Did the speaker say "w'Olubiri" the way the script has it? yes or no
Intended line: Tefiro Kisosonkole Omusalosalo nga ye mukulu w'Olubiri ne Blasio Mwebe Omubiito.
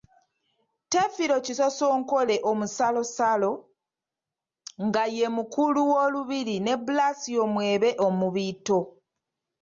yes